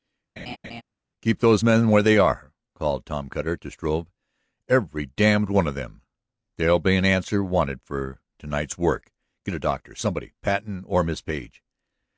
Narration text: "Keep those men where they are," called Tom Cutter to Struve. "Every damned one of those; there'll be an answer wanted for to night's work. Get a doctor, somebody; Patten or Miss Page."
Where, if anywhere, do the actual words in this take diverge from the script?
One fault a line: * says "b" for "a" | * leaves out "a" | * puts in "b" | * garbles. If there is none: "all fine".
* says "them" for "those"